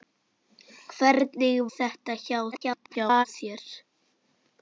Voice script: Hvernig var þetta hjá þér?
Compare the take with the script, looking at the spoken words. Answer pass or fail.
fail